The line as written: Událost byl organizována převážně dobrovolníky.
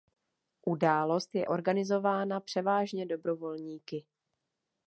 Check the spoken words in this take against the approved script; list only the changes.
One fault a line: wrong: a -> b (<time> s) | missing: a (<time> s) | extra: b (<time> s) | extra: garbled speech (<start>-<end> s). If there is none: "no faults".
wrong: byl -> je (1.4 s)